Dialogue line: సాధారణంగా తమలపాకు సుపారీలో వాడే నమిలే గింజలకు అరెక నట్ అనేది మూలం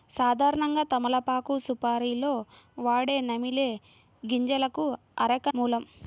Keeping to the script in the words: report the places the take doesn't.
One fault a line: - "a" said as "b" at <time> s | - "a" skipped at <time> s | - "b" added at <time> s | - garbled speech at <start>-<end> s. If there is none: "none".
- "నట్ అనేది" skipped at 5.5 s